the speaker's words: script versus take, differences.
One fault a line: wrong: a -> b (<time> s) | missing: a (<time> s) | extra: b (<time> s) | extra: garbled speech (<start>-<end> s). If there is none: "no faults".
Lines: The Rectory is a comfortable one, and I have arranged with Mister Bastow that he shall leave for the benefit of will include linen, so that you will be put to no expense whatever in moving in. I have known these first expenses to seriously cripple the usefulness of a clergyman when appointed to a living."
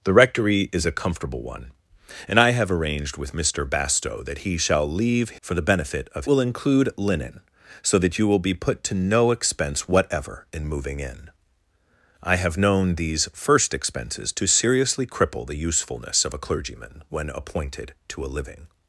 no faults